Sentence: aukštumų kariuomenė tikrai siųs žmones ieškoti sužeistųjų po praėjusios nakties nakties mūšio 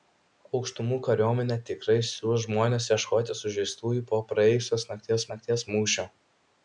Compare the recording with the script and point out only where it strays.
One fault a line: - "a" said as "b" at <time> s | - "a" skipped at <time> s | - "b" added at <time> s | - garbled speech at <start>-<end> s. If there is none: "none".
none